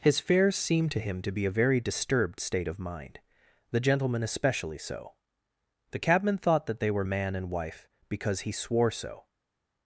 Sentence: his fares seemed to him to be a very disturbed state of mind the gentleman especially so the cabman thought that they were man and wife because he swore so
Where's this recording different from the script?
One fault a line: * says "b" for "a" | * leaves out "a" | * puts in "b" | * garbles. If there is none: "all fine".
all fine